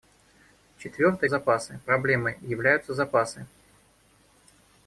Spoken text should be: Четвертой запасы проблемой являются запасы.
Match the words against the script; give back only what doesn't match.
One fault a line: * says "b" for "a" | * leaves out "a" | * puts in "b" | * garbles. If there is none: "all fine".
all fine